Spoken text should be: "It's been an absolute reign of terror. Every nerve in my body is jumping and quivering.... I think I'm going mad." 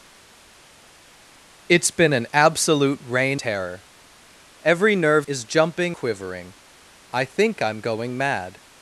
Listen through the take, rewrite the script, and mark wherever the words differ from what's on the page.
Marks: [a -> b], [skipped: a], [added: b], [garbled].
"It's been an absolute reign [skipped: of] terror. Every nerve [skipped: in my body] is jumping [skipped: and] quivering.... I think I'm going mad."